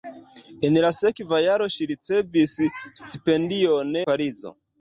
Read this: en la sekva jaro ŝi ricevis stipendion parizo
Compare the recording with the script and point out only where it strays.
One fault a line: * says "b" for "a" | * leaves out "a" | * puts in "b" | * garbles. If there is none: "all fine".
all fine